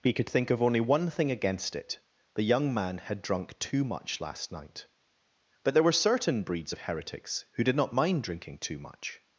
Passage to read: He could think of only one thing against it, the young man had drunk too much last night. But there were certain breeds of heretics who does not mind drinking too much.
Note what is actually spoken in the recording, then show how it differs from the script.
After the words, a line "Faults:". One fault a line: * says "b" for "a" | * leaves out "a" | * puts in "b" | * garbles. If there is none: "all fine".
He could think of only one thing against it, the young man had drunk too much last night. But there were certain breeds of heretics who did not mind drinking too much.
Faults:
* says "did" for "does"